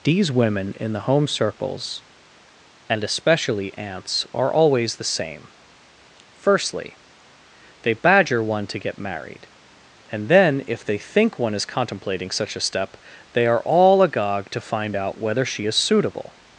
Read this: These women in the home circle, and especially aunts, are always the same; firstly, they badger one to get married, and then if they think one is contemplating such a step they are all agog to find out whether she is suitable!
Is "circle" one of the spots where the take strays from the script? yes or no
yes